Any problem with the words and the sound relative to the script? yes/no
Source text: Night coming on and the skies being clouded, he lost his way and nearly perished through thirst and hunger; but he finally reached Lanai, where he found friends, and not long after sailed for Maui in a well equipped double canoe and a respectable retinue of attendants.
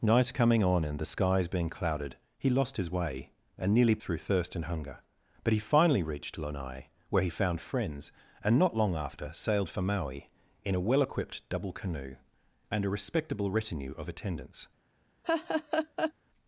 yes